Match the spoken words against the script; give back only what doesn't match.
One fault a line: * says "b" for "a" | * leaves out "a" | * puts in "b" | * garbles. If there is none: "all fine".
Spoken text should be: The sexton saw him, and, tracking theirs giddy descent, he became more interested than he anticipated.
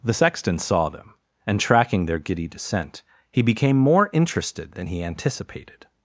* says "them" for "him"
* says "their" for "theirs"